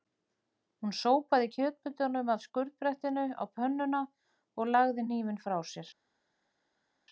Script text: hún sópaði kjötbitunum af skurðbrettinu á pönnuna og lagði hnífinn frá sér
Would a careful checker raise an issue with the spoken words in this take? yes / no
no